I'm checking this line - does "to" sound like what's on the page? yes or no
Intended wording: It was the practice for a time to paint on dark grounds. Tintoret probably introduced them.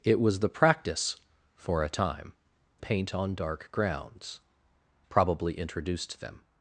no